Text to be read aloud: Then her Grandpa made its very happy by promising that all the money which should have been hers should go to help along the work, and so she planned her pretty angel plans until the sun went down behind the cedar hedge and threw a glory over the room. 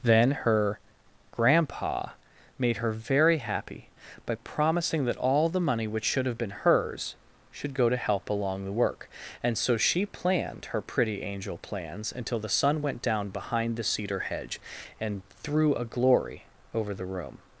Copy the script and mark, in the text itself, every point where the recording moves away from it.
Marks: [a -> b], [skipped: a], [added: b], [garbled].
Then her Grandpa made [its -> her] very happy by promising that all the money which should have been hers should go to help along the work, and so she planned her pretty angel plans until the sun went down behind the cedar hedge and threw a glory over the room.